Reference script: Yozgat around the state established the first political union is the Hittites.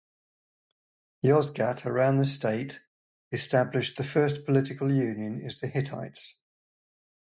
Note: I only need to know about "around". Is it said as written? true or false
true